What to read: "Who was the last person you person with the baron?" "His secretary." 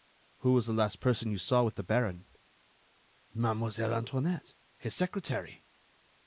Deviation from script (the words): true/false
true